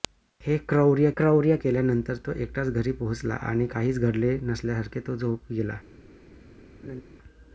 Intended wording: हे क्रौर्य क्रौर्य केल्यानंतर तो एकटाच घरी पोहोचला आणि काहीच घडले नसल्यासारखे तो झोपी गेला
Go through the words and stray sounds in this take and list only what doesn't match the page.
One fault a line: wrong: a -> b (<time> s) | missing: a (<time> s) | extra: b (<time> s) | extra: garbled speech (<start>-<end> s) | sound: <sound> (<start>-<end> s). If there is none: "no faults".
sound: laugh (6.8-7.0 s)